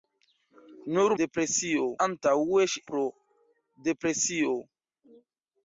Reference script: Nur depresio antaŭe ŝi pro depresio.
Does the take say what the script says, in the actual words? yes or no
yes